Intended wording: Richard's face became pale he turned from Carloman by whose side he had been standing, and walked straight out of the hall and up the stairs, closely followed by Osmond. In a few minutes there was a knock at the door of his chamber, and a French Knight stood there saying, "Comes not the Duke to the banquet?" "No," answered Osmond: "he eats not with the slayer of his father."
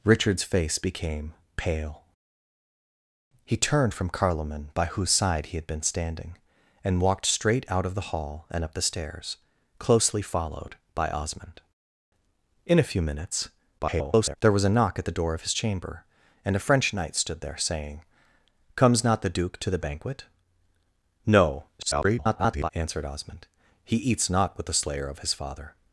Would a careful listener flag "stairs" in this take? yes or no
no